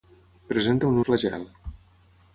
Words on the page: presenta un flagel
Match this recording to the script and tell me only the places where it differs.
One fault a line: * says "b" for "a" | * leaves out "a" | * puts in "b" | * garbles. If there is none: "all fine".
all fine